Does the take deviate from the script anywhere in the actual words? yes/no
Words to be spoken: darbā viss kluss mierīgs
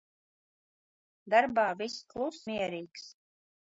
no